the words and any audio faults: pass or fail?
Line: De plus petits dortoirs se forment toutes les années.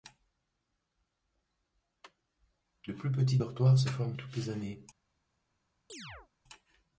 fail